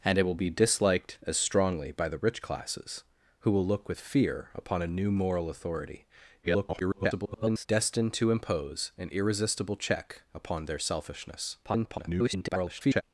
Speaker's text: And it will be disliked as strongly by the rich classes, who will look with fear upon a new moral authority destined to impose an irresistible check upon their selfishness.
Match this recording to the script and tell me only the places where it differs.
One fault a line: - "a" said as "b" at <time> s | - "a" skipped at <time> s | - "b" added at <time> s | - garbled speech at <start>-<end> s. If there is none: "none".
- garbled speech at 6.4-7.7 s
- garbled speech at 11.6-13.0 s